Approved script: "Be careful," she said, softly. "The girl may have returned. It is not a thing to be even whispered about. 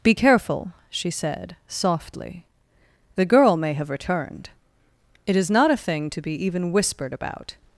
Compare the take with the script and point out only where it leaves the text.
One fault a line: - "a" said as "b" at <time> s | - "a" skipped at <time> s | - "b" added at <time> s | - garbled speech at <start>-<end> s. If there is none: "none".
none